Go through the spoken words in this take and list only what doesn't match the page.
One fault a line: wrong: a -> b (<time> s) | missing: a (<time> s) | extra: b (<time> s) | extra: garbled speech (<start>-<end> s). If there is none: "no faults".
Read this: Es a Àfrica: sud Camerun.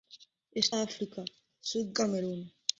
no faults